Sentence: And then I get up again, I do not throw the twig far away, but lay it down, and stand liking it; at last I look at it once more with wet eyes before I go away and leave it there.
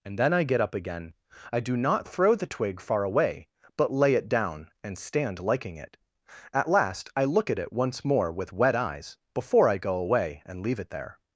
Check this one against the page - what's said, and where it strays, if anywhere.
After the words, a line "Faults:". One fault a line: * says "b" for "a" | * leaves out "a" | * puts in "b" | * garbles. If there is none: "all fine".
And then I get up again, I do not throw the twig far away, but lay it down, and stand liking it; at last I look at it once more with wet eyes before I go away and leave it there.
Faults:
all fine